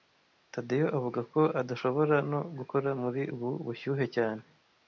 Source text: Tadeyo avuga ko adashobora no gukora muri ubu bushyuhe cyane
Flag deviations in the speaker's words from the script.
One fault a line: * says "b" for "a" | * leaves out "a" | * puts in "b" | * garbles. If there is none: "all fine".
all fine